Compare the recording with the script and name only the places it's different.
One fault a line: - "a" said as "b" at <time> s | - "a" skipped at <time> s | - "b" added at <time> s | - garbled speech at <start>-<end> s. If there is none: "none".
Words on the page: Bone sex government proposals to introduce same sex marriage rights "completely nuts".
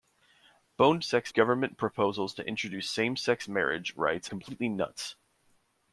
none